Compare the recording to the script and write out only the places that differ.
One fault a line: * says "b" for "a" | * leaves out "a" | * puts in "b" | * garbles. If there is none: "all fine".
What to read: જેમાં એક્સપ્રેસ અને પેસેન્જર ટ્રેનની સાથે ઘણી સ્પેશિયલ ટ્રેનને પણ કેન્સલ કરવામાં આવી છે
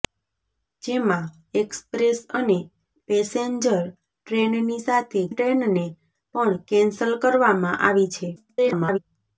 * leaves out "ઘણી સ્પેશિયલ"
* garbles